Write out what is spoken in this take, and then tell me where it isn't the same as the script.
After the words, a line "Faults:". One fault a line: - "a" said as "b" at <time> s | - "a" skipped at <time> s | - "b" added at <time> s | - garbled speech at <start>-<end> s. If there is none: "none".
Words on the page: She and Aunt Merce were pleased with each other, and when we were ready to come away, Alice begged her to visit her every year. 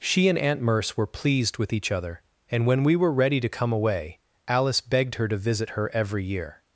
She and Aunt Merce were pleased with each other, and when we were ready to come away, Alice begged her to visit her every year.
Faults:
none